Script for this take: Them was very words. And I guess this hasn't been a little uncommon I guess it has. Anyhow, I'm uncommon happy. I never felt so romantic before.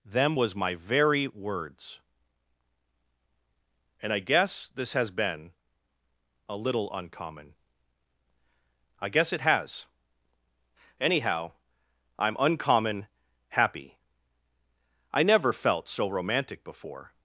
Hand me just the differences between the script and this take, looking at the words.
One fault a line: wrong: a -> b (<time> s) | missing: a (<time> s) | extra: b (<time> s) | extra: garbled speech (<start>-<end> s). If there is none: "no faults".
extra: my (0.5 s)
wrong: hasn't -> has (4.9 s)